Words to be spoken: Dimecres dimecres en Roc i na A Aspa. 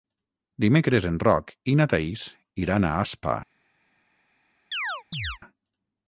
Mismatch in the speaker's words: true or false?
true